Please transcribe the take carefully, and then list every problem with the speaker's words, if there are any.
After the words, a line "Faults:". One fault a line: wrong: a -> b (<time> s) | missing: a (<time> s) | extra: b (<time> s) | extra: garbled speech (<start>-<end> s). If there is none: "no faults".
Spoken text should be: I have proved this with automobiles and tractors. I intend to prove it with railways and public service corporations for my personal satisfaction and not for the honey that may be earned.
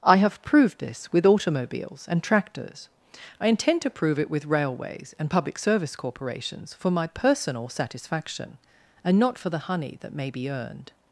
I have proved this with automobiles and tractors. I intend to prove it with railways and public service corporations for my personal satisfaction and not for the honey that may be earned.
Faults:
no faults